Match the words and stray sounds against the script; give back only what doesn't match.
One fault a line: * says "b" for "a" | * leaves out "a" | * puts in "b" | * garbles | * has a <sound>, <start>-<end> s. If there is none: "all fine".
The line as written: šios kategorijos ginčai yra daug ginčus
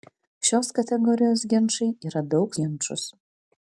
all fine